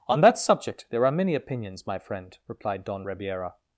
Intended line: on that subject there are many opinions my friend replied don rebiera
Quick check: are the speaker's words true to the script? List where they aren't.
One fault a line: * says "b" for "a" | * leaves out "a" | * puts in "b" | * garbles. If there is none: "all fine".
all fine